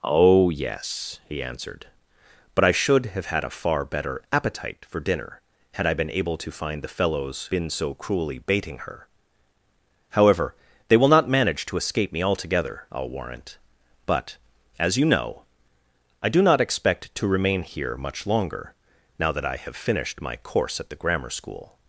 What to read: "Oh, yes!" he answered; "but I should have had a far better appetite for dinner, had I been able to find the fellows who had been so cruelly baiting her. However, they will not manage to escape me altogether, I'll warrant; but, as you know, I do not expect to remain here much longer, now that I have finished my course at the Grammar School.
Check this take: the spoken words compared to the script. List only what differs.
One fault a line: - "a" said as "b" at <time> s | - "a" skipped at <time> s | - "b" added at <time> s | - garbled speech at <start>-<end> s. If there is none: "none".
- "who had" skipped at 7.5 s